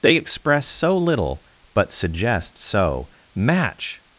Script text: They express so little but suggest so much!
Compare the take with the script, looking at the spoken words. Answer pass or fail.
fail